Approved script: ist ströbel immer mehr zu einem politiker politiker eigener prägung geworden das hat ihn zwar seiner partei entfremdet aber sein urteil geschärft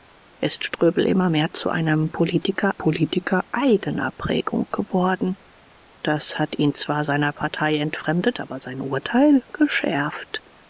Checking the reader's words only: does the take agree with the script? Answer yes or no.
yes